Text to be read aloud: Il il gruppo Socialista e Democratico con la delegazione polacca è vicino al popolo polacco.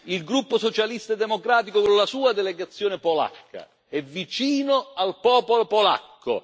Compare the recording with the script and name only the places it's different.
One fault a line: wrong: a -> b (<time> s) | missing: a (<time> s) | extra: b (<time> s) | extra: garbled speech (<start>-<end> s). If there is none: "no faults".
missing: il (0.2 s)
extra: sua (2.1 s)